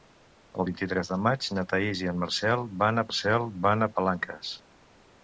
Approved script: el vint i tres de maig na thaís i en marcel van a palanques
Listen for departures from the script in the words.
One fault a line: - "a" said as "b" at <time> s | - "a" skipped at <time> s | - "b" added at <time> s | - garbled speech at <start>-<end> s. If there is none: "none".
- "marcel van" added at 3.1 s